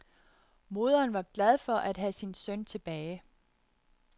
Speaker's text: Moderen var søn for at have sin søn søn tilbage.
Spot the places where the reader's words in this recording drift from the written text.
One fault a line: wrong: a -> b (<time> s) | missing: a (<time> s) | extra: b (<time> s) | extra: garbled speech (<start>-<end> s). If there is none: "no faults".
wrong: søn -> glad (1.3 s)
missing: søn (2.6 s)